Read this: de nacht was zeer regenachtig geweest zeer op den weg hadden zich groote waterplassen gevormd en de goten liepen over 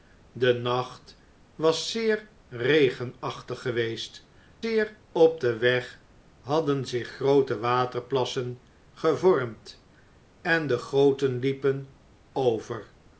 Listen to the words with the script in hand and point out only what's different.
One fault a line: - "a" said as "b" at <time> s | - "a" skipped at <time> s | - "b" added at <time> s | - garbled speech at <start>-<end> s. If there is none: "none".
none